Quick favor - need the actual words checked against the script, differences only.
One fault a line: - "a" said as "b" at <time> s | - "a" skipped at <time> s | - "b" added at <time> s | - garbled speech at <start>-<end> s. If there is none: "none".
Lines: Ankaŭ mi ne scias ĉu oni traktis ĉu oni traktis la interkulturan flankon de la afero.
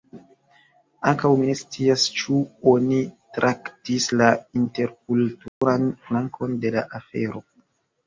- "ĉu oni traktis" skipped at 4.1 s